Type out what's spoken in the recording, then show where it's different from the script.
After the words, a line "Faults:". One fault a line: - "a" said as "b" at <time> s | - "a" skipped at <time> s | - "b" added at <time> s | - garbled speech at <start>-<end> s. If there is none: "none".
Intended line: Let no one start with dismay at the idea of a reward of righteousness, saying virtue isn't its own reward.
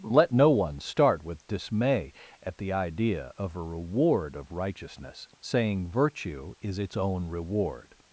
Let no one start with dismay at the idea of a reward of righteousness, saying virtue is its own reward.
Faults:
- "isn't" said as "is" at 6.6 s